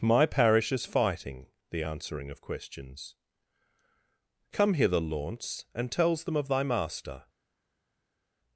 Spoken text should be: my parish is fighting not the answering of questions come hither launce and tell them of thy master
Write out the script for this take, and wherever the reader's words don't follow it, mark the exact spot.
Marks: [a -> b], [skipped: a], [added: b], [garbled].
my parish is fighting [skipped: not] the answering of questions come hither launce and [tell -> tells] them of thy master